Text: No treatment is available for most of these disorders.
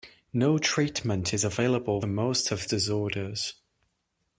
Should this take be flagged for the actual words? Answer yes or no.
yes